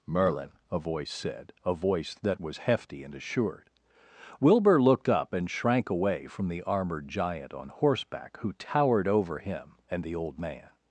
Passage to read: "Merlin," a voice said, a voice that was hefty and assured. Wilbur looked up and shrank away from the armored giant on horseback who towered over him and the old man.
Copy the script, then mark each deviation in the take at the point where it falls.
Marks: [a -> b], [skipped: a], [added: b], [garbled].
"Merlin," a voice said, a voice that was hefty and assured. Wilbur looked up and shrank away from the armored giant on horseback who towered over him and the old man.